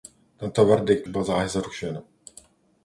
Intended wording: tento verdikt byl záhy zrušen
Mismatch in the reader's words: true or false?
false